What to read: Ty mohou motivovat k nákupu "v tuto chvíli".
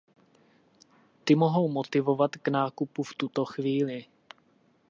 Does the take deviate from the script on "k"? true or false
false